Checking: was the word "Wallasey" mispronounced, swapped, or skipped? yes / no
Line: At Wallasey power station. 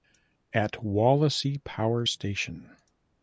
no